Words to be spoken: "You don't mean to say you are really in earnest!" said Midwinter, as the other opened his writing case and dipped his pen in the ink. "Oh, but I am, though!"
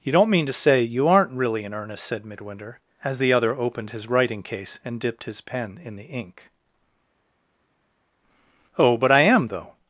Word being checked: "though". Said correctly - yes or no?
yes